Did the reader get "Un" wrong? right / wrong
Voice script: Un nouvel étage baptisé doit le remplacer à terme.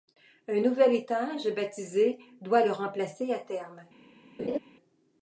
right